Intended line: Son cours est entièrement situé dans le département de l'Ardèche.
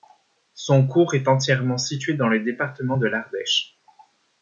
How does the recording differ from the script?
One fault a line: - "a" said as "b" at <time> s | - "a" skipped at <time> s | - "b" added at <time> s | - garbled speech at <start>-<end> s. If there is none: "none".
none